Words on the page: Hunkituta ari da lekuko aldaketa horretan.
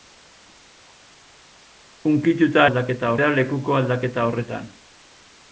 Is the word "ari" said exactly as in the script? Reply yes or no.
no